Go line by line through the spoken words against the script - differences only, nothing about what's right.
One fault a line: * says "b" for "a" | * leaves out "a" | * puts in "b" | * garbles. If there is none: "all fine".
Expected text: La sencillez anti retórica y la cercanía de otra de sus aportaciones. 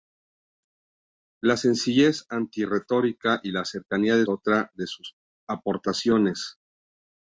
all fine